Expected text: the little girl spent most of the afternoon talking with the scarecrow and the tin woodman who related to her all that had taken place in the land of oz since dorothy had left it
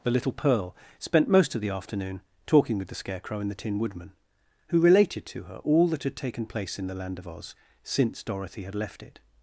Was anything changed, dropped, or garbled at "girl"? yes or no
yes